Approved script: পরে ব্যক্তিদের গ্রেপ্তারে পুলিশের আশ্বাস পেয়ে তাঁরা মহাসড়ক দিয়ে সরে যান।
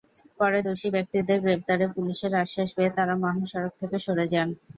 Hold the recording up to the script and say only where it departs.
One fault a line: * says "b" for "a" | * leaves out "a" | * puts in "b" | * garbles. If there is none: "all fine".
* puts in "দোষী"
* says "থেকে" for "দিয়ে"